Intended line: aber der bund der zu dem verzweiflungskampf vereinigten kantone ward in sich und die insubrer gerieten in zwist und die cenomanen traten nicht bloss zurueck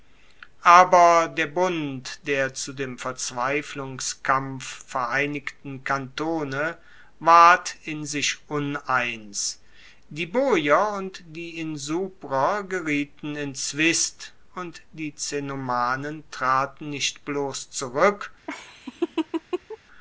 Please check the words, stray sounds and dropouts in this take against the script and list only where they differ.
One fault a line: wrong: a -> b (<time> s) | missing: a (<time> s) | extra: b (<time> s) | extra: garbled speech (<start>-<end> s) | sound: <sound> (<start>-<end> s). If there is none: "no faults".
extra: uneins die boier (8.5 s)
sound: laugh (18.5-19.8 s)